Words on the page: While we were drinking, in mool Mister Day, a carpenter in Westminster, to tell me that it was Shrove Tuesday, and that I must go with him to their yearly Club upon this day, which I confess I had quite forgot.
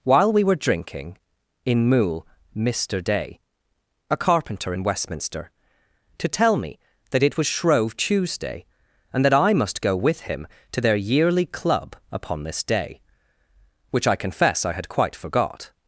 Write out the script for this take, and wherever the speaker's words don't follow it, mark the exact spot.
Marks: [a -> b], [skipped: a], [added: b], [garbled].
While we were drinking, in mool Mister Day, a carpenter in Westminster, to tell me that it was Shrove Tuesday, and that I must go with him to their yearly Club upon this day, which I confess I had quite forgot.